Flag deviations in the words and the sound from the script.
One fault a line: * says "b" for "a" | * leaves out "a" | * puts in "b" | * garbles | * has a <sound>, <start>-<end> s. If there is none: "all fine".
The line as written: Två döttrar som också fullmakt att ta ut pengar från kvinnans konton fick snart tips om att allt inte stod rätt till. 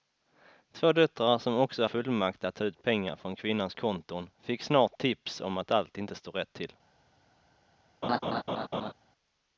* has a laugh, 8.0-8.9 s